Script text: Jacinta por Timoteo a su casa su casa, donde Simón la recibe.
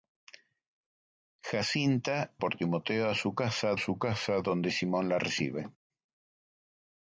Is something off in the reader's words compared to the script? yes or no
no